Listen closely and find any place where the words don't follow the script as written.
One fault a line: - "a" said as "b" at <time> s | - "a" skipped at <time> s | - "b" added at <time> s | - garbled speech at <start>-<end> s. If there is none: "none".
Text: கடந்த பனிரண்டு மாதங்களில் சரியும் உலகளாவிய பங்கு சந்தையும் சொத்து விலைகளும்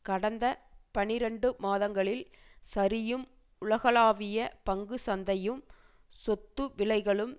none